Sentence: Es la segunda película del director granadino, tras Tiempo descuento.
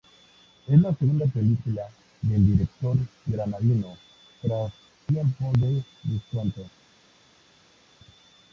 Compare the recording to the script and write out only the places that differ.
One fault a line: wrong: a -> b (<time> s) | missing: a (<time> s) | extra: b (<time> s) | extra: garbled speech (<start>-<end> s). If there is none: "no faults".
extra: de (5.6 s)